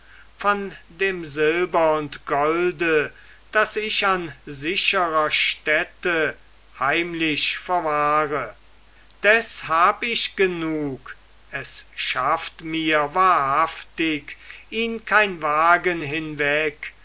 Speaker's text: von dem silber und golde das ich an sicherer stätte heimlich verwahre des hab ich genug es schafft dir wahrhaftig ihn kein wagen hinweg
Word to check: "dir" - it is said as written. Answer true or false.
false